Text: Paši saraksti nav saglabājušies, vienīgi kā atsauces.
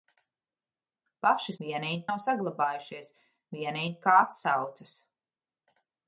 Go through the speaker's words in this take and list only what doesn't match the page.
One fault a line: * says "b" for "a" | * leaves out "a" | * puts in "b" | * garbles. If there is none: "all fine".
* says "vienīgi" for "saraksti"